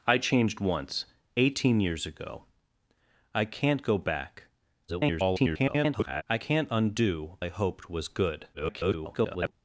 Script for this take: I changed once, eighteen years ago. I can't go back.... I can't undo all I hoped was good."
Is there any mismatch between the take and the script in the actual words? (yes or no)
yes